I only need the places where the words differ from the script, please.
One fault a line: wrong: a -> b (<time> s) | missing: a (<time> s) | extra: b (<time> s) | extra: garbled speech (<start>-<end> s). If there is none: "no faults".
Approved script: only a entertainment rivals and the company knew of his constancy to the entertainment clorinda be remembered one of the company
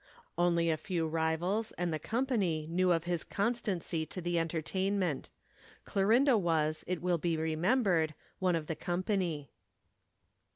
wrong: entertainment -> few (0.8 s)
extra: was it will (6.4 s)